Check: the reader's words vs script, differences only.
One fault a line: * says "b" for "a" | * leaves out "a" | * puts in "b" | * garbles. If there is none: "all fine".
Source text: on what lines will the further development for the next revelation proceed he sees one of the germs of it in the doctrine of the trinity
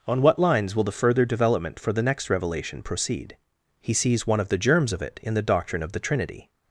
all fine